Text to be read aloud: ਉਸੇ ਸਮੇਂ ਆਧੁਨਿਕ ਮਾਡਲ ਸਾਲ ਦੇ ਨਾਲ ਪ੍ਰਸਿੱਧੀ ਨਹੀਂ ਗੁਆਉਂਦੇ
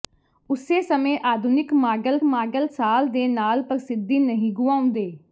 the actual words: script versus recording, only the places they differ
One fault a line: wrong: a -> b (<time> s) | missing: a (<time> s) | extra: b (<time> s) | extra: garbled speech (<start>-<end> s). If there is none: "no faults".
extra: ਮਾਡਲ (2.2 s)